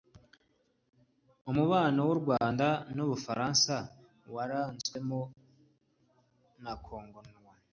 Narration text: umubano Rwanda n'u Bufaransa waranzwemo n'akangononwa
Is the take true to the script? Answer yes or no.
no